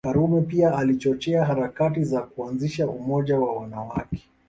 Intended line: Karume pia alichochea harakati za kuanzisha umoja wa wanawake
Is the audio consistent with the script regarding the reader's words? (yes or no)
yes